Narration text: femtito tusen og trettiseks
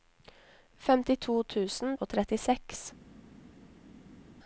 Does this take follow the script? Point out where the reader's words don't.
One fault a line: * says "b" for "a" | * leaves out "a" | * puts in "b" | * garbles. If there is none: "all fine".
all fine